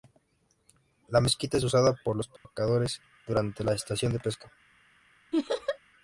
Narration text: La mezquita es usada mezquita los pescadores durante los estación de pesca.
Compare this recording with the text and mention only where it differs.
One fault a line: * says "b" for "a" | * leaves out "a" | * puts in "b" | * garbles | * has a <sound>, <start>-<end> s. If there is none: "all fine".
* says "por" for "mezquita"
* has a dropout, 2.4-2.5 s
* says "la" for "los"
* has a laugh, 5.3-5.8 s